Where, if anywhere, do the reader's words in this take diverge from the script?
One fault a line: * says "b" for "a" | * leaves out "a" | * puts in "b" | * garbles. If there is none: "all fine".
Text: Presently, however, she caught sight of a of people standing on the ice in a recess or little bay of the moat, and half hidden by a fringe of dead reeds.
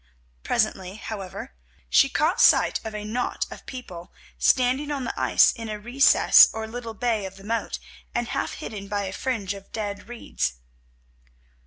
* puts in "knot"